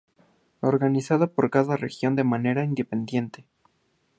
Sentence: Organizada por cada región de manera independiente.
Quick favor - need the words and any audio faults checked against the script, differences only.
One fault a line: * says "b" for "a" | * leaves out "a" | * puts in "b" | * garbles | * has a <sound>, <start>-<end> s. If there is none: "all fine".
all fine